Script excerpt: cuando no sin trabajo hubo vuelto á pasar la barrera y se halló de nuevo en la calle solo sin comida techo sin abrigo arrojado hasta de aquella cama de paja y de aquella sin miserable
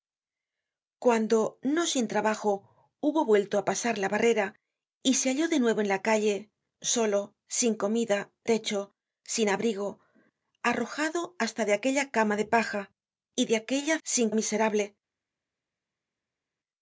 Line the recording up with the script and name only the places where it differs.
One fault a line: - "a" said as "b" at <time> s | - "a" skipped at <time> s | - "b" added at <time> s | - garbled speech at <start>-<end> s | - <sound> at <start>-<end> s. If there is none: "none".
none